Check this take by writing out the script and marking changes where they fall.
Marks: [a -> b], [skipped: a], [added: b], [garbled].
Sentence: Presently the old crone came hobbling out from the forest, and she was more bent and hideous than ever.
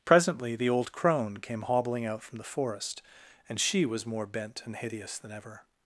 Presently the old crone came hobbling out from the forest, and she was more bent and hideous than ever.